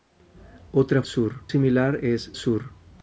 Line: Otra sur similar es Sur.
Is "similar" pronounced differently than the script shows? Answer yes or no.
no